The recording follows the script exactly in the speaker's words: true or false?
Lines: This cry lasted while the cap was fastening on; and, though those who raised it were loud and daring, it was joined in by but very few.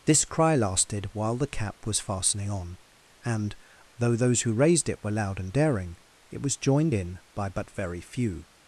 true